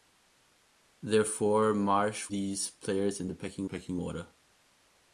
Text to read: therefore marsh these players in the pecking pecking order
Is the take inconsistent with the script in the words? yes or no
no